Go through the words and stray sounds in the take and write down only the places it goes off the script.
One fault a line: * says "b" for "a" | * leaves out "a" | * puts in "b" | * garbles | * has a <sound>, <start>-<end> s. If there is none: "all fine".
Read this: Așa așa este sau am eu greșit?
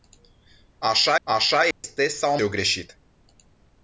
* has a dropout, 1.7-1.8 s